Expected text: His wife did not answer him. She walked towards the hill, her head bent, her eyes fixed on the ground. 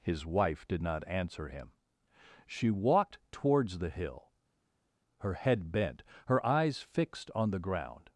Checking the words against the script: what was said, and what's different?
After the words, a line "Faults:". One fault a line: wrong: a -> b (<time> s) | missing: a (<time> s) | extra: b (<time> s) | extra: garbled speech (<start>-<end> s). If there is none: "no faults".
His wife did not answer him. She walked towards the hill, her head bent, her eyes fixed on the ground.
Faults:
no faults